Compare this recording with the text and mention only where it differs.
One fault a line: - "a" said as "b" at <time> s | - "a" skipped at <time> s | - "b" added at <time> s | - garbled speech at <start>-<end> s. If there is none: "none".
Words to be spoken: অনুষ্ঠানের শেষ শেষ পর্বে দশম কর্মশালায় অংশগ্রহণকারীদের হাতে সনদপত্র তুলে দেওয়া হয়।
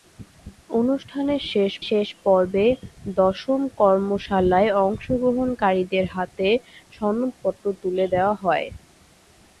none